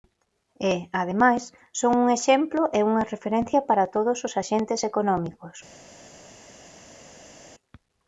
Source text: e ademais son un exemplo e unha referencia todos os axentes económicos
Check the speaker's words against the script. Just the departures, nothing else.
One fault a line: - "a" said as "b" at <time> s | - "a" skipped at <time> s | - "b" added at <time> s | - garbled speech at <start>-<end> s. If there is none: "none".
- "para" added at 3.7 s